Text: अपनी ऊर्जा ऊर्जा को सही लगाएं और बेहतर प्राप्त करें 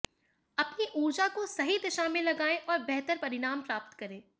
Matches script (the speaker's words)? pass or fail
fail